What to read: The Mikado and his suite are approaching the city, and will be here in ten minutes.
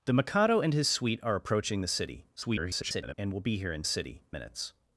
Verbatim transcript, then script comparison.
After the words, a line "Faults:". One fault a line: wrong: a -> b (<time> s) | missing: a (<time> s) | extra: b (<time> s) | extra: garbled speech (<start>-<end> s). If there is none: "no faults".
The Mikado and his suite are approaching the city, [garbled] and will be here in city minutes.
Faults:
extra: garbled speech (2.4-3.1 s)
wrong: ten -> city (3.8 s)